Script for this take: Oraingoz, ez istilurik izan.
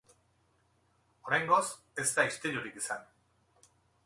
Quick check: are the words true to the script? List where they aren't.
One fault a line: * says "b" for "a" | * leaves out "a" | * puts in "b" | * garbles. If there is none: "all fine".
* puts in "da"